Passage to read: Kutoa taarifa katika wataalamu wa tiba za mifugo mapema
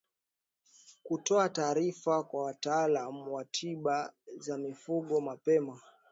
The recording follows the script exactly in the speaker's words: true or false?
false